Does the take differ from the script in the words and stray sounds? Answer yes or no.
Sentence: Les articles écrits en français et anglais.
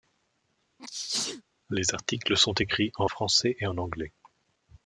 yes